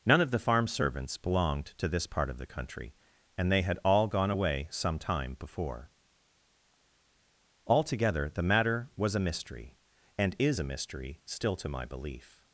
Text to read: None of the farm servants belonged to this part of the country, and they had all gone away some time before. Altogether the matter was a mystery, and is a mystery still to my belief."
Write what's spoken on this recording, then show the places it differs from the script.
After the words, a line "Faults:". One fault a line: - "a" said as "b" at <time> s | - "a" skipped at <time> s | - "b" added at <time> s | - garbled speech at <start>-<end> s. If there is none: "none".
None of the farm servants belonged to this part of the country, and they had all gone away some time before. Altogether the matter was a mystery, and is a mystery still to my belief."
Faults:
none